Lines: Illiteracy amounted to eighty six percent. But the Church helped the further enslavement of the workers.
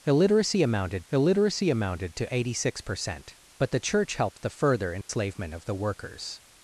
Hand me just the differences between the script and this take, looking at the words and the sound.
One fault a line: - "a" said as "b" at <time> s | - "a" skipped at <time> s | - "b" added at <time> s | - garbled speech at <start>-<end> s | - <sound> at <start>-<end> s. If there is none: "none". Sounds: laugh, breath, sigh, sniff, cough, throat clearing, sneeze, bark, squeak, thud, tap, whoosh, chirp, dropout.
- "illiteracy amounted" added at 1.1 s
- dropout at 5.0-5.1 s